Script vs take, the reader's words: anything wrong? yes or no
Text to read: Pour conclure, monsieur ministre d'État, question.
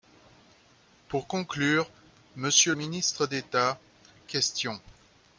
no